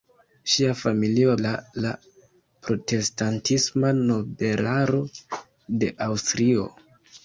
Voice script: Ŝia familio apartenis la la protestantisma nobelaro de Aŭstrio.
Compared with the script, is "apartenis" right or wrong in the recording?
wrong